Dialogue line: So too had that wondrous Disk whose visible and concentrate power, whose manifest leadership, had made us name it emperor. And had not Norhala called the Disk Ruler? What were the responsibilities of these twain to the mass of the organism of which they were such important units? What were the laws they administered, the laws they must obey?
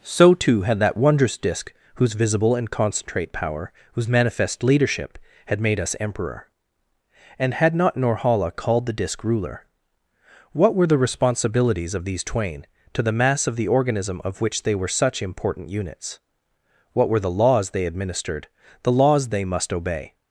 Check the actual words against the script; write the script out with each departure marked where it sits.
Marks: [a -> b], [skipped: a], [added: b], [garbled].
So too had that wondrous Disk whose visible and concentrate power, whose manifest leadership, had made us [skipped: name it] emperor. And had not Norhala called the Disk Ruler? What were the responsibilities of these twain to the mass of the organism of which they were such important units? What were the laws they administered, the laws they must obey?